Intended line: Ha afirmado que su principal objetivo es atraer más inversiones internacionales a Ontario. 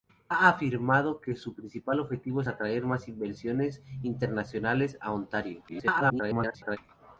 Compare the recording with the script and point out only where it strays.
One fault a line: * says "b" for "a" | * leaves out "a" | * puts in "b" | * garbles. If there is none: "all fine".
* garbles